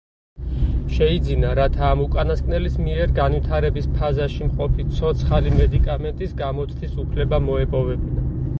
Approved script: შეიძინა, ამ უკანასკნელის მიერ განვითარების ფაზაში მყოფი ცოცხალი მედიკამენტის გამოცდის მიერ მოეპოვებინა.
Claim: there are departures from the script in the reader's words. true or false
true